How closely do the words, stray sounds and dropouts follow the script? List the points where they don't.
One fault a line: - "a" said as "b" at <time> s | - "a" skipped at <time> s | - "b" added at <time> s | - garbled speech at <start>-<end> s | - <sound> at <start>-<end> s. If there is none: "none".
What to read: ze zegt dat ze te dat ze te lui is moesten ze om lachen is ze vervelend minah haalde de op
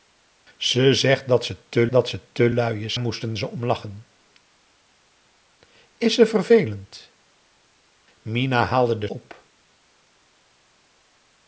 none